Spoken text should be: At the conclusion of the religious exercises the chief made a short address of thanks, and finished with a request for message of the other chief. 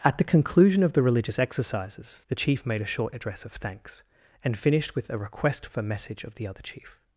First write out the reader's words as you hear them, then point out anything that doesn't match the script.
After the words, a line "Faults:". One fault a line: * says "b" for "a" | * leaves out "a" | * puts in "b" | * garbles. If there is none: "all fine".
At the conclusion of the religious exercises the chief made a short address of thanks, and finished with a request for message of the other chief.
Faults:
all fine